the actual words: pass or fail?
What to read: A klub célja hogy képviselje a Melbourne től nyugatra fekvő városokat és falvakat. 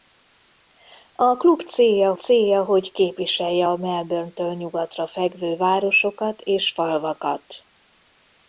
fail